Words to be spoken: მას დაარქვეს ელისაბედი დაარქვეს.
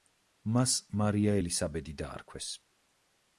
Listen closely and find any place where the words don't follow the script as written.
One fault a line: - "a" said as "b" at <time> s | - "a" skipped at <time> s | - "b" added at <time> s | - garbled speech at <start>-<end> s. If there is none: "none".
- "დაარქვეს" said as "მარია" at 1.0 s